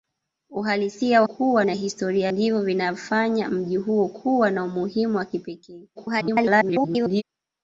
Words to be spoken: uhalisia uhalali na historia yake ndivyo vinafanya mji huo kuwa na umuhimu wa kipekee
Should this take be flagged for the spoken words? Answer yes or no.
yes